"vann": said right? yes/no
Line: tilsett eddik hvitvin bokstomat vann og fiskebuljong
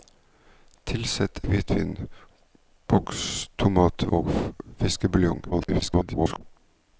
no